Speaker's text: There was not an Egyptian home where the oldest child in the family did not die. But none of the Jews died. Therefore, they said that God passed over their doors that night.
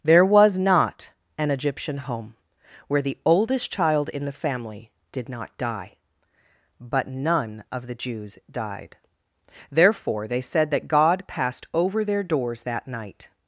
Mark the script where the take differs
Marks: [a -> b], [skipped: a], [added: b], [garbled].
There was not an Egyptian home where the oldest child in the family did not die. But none of the Jews died. Therefore, they said that God passed over their doors that night.